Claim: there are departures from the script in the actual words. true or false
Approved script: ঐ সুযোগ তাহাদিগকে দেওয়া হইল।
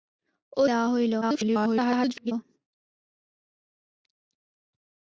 true